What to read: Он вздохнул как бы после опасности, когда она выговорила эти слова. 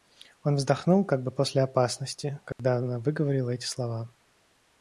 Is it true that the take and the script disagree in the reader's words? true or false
false